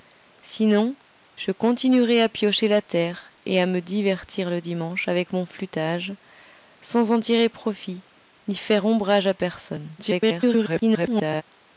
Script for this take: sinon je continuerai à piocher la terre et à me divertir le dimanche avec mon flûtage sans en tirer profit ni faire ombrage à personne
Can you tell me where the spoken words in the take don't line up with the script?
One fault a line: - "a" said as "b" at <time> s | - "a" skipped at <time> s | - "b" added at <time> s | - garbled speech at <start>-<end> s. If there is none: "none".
- garbled speech at 10.0-11.4 s